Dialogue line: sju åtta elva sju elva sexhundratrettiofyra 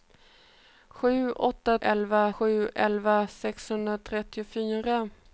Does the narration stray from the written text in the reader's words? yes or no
no